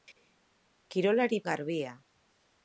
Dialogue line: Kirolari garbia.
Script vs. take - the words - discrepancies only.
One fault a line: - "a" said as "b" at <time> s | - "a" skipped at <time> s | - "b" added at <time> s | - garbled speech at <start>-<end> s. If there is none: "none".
none